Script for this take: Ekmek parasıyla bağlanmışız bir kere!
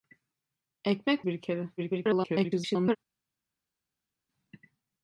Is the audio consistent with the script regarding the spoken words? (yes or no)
no